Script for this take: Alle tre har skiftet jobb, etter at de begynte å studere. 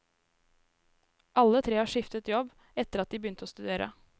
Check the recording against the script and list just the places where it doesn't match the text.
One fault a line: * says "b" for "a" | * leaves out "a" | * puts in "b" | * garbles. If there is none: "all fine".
all fine